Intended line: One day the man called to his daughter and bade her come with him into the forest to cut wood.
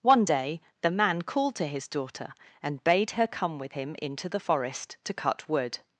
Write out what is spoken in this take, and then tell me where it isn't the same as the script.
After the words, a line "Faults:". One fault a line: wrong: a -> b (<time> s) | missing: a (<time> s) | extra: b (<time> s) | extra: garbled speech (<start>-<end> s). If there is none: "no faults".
One day the man called to his daughter and bade her come with him into the forest to cut wood.
Faults:
no faults